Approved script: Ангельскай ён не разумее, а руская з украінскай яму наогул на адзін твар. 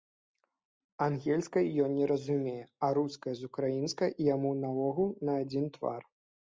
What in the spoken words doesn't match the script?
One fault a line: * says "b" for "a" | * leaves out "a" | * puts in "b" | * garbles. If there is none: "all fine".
all fine